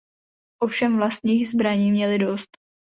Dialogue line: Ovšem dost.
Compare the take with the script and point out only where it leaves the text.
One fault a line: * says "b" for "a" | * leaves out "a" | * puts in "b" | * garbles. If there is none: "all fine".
* puts in "vlastních zbraní měli"